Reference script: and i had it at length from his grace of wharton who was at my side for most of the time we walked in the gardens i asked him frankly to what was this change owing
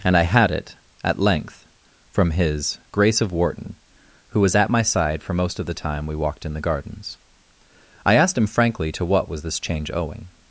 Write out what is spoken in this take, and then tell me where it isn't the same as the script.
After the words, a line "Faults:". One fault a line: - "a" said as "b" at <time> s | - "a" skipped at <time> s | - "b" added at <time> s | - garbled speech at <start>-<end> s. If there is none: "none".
and i had it at length from his grace of wharton who was at my side for most of the time we walked in the gardens i asked him frankly to what was this change owing
Faults:
none